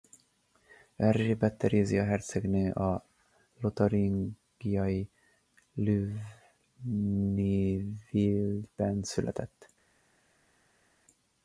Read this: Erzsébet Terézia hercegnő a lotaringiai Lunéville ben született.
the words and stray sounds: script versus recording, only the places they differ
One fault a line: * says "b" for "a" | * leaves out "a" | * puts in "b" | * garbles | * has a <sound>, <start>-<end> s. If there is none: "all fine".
all fine